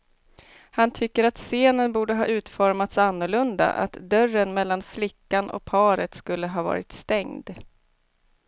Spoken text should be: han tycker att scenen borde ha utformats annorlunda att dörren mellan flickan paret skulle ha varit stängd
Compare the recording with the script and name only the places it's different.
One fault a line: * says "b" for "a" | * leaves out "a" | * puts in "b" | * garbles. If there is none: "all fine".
* puts in "och"